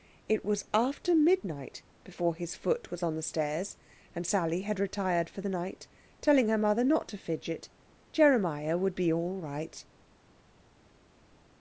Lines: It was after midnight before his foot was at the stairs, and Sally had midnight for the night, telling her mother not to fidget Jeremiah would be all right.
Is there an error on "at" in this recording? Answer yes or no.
yes